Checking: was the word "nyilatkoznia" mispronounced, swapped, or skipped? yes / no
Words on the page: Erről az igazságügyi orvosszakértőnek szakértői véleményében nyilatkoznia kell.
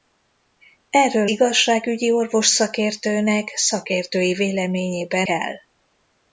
yes